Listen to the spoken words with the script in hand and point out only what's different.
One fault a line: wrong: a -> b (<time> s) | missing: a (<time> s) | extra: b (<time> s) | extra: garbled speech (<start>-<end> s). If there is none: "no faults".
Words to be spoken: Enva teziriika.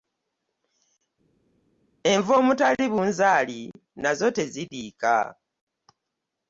extra: omutali bunzaali nazo (2.4 s)